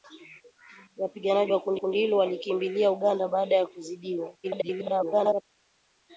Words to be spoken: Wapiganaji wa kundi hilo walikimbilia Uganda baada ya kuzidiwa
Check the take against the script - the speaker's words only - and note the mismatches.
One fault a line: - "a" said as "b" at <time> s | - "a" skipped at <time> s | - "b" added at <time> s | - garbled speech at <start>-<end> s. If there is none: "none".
- "kundi" added at 1.8 s
- garbled speech at 4.4-5.4 s